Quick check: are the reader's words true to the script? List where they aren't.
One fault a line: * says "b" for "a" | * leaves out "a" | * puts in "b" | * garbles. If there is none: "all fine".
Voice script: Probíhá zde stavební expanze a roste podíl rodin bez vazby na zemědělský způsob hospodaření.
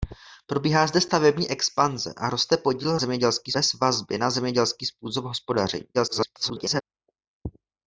* says "zemědělský" for "rodin"
* garbles